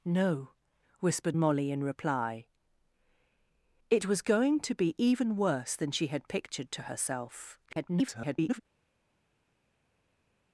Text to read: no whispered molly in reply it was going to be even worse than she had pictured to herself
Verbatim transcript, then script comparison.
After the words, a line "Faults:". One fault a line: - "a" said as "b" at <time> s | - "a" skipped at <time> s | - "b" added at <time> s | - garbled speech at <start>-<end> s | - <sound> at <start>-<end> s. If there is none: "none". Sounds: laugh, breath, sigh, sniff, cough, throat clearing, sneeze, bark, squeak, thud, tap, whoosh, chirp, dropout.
no whispered molly in reply it was going to be even worse than she had pictured to herself [garbled]
Faults:
- garbled speech at 7.7-8.6 s